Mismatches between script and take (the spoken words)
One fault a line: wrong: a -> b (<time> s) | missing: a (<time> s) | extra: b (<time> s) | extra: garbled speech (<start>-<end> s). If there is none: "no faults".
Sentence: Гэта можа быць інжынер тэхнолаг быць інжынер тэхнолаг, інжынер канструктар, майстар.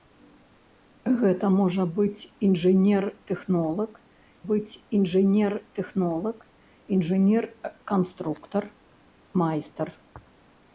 no faults